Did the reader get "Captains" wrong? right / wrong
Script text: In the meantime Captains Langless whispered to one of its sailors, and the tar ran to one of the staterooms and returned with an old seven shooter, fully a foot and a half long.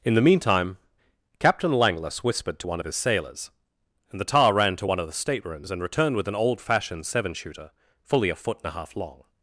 wrong